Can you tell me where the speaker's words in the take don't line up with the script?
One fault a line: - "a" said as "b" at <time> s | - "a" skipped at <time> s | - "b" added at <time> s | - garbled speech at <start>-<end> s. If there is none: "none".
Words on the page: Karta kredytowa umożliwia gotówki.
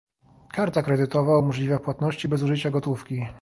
- "płatności bez użycia" added at 1.8 s